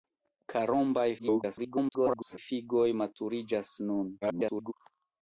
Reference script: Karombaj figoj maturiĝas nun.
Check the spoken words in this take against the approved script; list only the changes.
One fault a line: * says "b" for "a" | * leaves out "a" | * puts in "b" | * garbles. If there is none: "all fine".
* garbles
* garbles